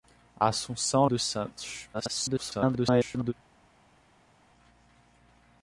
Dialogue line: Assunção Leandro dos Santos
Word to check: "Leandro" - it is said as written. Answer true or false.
false